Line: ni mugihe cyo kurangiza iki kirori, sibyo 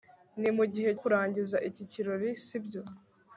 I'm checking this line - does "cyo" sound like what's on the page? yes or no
no